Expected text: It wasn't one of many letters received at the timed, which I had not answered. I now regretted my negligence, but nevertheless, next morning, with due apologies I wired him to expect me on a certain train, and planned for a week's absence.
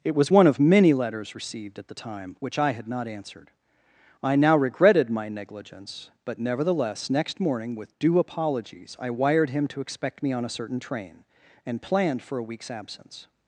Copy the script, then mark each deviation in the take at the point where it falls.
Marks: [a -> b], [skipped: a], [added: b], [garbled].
It [wasn't -> was] one of many letters received at the [timed, -> time] which I had not answered. I now regretted my negligence, but nevertheless, next morning, with due apologies I wired him to expect me on a certain train, and planned for a week's absence.